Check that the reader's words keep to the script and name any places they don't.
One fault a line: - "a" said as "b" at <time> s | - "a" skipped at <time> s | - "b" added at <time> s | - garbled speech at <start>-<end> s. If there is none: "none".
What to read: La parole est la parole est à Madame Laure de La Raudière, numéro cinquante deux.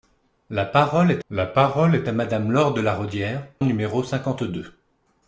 none